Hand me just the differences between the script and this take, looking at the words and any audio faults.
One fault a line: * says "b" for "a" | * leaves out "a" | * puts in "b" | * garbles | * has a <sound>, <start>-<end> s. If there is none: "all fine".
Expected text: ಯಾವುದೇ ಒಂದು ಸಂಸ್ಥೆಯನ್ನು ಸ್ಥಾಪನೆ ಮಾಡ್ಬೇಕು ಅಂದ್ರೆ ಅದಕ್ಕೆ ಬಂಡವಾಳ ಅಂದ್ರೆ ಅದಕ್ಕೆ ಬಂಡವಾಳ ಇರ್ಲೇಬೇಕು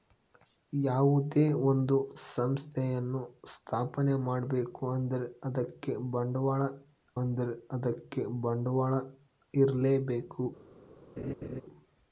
* has a laugh, 11.2-11.6 s